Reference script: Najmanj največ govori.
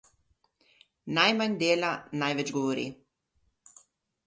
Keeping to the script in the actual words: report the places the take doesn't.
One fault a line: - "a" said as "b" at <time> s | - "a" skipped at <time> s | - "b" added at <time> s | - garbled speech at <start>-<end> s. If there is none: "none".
- "dela" added at 1.6 s